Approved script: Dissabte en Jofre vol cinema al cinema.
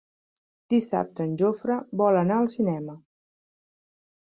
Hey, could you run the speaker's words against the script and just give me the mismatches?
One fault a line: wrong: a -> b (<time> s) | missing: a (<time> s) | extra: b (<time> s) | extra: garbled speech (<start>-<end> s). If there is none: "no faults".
wrong: cinema -> anar (2.2 s)